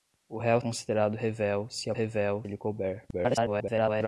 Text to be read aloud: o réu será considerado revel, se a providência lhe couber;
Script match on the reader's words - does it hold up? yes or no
no